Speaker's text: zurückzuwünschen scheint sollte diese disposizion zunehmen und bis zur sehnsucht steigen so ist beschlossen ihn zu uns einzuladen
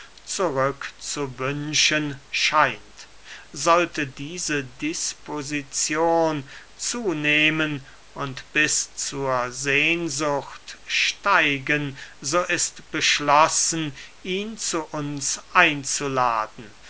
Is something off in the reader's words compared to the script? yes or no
no